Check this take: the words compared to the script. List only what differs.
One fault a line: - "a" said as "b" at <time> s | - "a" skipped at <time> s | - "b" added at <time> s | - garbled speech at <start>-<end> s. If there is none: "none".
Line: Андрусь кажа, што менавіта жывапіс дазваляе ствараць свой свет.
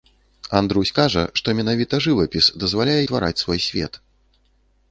none